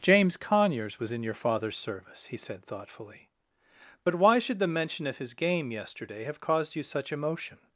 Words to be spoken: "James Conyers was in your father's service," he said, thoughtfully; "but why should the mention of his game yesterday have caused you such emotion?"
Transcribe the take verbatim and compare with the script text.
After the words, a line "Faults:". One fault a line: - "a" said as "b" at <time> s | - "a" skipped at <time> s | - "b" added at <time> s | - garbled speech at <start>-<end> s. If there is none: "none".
"James Conyers was in your father's service," he said, thoughtfully; "but why should the mention of his game yesterday have caused you such emotion?"
Faults:
none